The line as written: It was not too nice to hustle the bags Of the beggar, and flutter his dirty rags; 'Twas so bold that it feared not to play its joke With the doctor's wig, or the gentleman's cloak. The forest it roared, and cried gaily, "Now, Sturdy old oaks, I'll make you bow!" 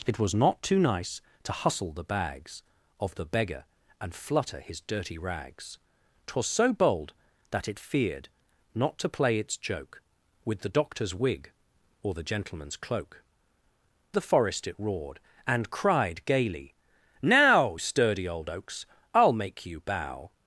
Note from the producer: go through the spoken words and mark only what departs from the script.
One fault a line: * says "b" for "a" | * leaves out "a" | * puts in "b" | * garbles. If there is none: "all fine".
all fine